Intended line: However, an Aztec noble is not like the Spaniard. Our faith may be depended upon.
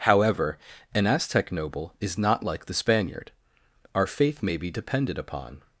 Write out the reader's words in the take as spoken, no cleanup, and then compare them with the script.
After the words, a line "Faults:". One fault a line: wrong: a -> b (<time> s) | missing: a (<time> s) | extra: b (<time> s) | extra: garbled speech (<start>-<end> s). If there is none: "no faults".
However, an Aztec noble is not like the Spaniard. Our faith may be depended upon.
Faults:
no faults